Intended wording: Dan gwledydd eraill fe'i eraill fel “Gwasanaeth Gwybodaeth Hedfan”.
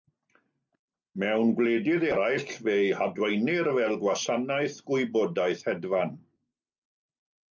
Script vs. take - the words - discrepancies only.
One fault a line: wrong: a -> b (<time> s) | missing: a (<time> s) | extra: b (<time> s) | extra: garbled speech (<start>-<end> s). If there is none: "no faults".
wrong: Dan -> Mewn (1.2 s)
wrong: eraill -> hadwaenir (3.0 s)